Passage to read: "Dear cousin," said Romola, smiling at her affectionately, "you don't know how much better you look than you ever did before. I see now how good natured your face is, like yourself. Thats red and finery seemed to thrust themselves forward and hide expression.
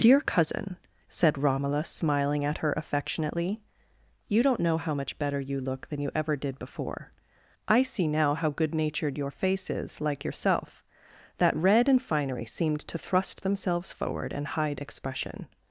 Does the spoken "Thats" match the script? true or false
false